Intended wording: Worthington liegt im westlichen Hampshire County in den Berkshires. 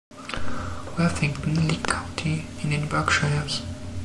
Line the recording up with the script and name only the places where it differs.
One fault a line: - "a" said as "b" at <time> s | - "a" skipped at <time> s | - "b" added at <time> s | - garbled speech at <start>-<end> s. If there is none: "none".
- "im westlichen Hampshire" skipped at 1.9 s